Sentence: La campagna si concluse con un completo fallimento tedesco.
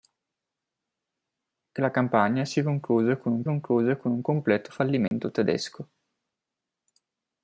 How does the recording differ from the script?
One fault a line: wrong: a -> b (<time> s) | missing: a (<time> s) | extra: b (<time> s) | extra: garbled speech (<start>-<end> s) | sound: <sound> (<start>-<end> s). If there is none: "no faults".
extra: concluse con un (3.4 s)
sound: dropout (5.1-5.1 s)